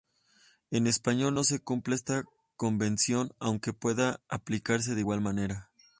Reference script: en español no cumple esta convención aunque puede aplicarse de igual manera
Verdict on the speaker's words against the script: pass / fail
fail